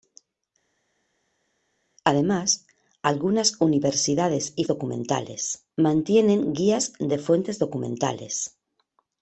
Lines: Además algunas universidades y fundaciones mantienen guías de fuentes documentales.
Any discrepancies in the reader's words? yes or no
yes